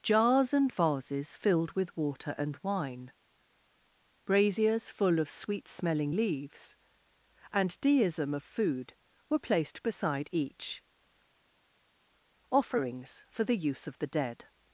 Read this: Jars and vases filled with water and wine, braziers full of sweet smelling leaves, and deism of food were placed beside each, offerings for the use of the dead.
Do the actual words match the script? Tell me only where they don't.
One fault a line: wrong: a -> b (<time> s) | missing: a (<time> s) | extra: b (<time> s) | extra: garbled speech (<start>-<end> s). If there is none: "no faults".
no faults